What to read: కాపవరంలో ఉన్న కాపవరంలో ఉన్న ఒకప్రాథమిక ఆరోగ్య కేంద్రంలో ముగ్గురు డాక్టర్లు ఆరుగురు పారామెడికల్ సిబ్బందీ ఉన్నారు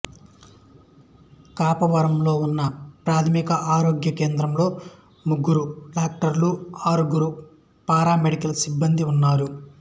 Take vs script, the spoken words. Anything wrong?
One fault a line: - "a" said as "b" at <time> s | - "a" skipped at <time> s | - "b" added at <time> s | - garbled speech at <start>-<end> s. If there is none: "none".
- "కాపవరంలో ఉన్న" skipped at 2.6 s